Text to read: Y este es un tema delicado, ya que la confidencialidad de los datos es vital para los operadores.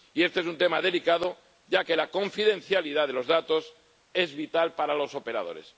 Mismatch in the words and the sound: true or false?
false